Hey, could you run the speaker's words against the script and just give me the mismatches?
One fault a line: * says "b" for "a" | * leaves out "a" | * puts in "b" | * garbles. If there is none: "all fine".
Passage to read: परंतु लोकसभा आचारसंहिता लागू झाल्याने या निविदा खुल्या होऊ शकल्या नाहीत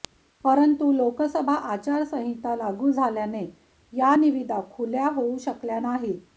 all fine